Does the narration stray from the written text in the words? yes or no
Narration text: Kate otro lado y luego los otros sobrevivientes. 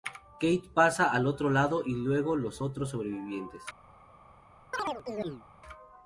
yes